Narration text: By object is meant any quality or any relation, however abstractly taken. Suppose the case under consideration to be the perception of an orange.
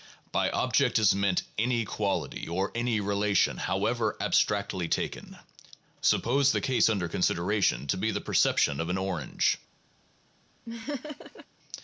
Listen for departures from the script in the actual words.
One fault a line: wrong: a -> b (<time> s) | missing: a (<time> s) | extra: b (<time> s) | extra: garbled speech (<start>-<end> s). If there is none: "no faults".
no faults